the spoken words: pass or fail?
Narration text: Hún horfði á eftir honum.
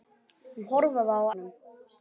fail